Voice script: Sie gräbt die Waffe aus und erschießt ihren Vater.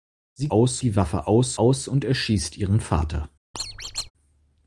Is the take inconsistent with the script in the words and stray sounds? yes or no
yes